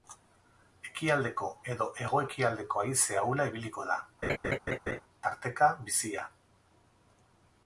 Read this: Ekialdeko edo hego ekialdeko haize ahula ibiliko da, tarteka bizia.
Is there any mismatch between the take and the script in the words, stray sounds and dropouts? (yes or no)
yes